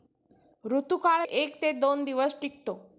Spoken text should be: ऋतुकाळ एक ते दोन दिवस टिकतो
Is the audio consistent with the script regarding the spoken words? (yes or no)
yes